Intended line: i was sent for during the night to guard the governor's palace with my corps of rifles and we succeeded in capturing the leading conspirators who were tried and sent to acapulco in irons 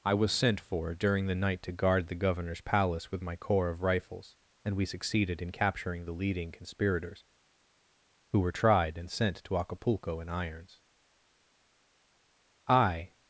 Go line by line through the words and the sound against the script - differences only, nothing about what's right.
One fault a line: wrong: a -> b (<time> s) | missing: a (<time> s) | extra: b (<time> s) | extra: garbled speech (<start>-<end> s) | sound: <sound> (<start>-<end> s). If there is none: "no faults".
extra: i (12.7 s)